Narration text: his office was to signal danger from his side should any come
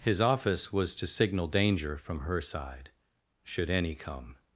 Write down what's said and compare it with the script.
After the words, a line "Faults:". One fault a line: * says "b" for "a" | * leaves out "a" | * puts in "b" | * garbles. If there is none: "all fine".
his office was to signal danger from her side should any come
Faults:
* says "her" for "his"